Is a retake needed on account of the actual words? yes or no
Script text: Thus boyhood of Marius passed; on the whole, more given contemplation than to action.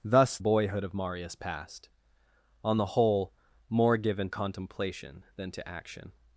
no